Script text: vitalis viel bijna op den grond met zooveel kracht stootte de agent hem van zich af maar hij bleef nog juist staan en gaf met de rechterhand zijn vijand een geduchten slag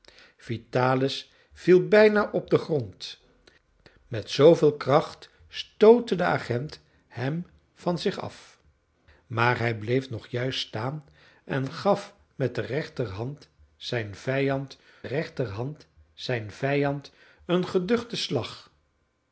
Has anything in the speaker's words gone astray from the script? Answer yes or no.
yes